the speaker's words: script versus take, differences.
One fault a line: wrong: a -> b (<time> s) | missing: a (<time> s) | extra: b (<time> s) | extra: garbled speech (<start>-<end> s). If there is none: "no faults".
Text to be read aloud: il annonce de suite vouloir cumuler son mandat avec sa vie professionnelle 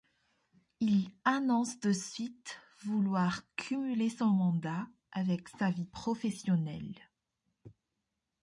no faults